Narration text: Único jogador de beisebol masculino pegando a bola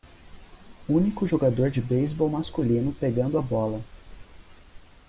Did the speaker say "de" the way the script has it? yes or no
yes